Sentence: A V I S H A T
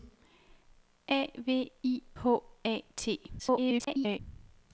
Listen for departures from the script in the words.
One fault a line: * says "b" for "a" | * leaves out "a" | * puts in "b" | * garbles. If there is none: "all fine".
* leaves out "S"
* garbles